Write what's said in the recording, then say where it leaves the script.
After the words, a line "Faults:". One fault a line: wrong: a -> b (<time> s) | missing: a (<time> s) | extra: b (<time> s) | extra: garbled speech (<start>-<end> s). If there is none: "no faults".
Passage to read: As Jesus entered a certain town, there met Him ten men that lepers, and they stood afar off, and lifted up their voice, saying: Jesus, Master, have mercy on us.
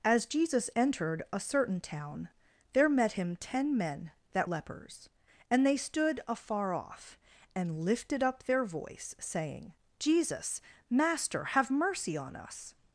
As Jesus entered a certain town, there met Him ten men that lepers, and they stood afar off, and lifted up their voice, saying: Jesus, Master, have mercy on us.
Faults:
no faults